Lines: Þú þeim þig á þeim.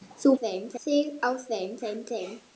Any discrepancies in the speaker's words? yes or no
no